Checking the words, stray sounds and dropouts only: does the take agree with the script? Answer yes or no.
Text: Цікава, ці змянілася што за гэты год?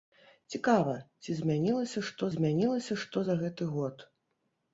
no